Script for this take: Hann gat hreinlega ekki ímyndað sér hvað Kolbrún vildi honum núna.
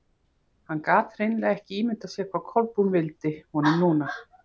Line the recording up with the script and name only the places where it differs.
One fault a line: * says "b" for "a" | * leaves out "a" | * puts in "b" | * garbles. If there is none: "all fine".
all fine